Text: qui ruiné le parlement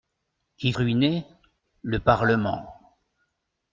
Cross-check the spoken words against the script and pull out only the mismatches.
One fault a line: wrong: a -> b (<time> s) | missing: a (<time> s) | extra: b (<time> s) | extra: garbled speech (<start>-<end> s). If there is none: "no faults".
no faults